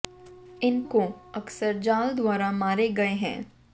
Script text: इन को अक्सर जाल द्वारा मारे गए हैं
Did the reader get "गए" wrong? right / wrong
right